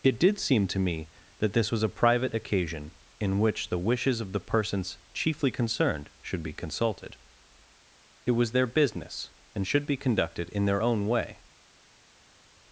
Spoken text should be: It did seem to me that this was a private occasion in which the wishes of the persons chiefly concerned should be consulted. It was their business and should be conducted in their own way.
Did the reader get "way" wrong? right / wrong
right